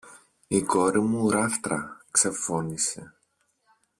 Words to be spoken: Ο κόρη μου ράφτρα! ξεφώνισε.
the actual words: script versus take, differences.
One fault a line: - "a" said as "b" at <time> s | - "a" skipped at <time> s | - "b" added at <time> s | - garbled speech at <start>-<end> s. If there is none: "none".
- "Ο" said as "Η" at 0.5 s